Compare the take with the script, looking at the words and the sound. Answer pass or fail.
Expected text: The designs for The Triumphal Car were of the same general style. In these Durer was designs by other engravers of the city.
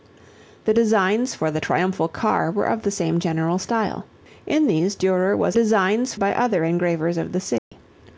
fail